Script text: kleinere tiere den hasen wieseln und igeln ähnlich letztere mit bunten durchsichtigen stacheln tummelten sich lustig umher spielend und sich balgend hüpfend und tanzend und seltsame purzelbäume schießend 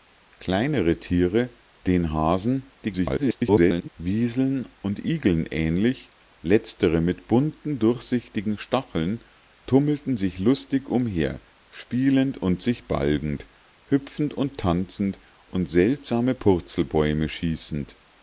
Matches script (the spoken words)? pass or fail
fail